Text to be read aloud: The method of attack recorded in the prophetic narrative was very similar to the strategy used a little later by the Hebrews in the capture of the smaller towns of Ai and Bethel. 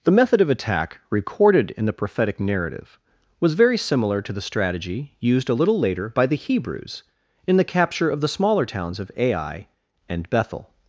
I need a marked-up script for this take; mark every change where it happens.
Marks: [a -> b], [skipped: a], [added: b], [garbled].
The method of attack recorded in the prophetic narrative was very similar to the strategy used a little later by the Hebrews in the capture of the smaller towns of Ai and Bethel.